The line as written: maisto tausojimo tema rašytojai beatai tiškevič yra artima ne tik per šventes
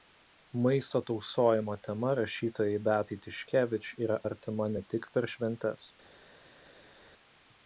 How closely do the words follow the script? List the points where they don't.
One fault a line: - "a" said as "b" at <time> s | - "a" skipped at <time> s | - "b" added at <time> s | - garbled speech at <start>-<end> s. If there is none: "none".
none